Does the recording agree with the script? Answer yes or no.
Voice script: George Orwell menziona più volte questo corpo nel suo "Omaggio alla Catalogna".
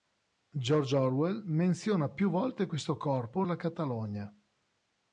no